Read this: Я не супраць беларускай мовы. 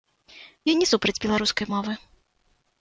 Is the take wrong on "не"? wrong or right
right